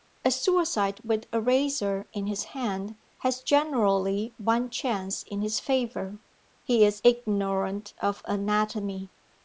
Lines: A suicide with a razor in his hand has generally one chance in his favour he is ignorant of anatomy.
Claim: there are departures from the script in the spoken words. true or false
false